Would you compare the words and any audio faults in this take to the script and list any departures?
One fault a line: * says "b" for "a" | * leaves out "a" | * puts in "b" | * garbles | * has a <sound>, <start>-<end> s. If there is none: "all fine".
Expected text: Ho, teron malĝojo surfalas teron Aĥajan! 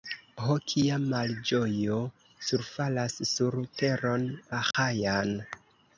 * says "kia" for "teron"
* puts in "sur"
* has a dropout, 4.7-4.7 s